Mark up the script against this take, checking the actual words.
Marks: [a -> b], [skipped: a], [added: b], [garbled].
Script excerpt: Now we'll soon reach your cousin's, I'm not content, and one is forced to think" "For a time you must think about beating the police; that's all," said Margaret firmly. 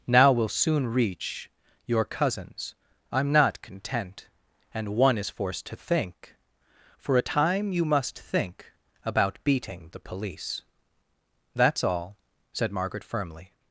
Now we'll soon reach your cousin's, I'm not content, and one is forced to think" "For a time you must think about beating the police; that's all," said Margaret firmly.